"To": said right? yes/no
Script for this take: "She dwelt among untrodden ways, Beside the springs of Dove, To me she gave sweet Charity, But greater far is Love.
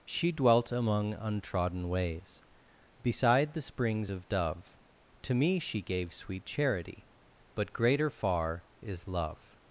yes